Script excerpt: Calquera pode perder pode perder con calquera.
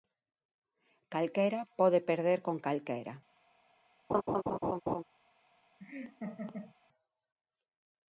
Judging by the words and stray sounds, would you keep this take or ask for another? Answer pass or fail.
fail